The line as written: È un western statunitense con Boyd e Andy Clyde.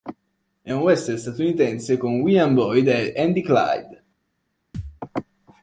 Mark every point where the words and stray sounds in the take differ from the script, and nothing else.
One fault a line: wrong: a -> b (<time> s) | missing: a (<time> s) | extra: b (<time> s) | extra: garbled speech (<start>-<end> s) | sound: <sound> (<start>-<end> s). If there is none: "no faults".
extra: William (2.2 s)
sound: thud (4.7-5.0 s)